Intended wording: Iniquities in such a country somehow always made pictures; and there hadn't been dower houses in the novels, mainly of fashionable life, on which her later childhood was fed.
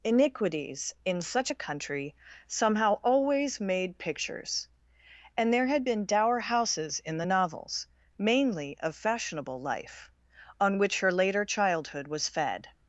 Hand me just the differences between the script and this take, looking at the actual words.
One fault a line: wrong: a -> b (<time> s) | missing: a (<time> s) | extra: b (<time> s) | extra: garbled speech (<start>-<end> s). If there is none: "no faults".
wrong: hadn't -> had (5.7 s)